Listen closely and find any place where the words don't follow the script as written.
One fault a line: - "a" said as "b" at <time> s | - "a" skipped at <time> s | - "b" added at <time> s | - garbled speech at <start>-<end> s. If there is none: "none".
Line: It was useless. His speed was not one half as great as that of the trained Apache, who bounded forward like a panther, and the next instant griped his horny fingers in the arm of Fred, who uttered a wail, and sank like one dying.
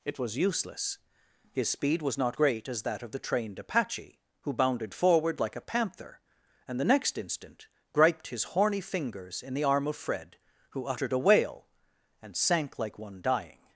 - "one half as" skipped at 2.4 s